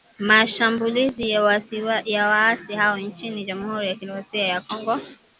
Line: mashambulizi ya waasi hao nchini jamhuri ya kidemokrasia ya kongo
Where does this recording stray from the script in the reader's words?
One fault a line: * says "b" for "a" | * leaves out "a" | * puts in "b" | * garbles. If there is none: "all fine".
all fine